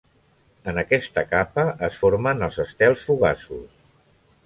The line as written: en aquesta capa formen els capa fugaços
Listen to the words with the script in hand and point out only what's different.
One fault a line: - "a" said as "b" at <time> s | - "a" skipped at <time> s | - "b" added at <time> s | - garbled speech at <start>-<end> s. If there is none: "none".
- "es" added at 1.9 s
- "capa" said as "estels" at 2.7 s